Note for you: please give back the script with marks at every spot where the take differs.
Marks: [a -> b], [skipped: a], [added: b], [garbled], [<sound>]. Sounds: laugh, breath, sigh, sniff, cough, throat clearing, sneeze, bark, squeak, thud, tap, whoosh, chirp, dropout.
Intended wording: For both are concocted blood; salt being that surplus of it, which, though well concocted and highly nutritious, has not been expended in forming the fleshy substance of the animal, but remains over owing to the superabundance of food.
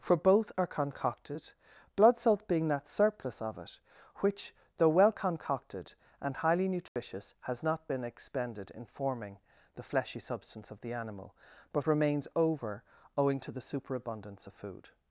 For both are concocted blood; salt being that surplus of it, which, though well concocted and highly nutritious, [dropout] has not been expended in forming the fleshy substance of the animal, but remains over owing to the superabundance of food.